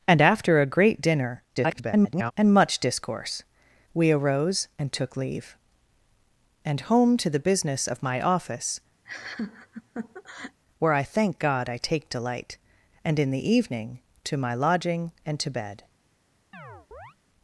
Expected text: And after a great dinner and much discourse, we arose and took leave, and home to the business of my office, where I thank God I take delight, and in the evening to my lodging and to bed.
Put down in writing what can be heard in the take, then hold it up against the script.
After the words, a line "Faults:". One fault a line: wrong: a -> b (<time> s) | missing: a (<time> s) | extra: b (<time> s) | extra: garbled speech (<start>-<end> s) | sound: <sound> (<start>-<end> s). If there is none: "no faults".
And after a great dinner [garbled] and much discourse, we arose and took leave, and home to the business of my office, where I thank God I take delight, and in the evening to my lodging and to bed.
Faults:
extra: garbled speech (1.6-2.3 s)
sound: laugh (9.1-10.6 s)
sound: chirp (16.5-17.2 s)